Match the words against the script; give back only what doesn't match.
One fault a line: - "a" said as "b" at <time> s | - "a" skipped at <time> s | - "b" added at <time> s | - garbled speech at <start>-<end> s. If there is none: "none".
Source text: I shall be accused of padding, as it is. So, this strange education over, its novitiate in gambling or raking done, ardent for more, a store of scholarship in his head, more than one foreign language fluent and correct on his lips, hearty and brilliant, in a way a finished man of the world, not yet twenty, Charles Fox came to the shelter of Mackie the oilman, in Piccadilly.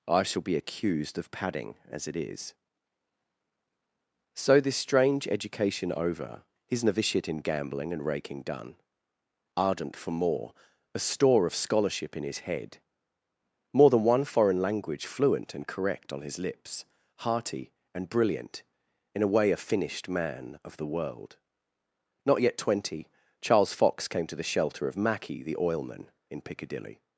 - "its" said as "his" at 6.7 s
- "or" said as "and" at 7.9 s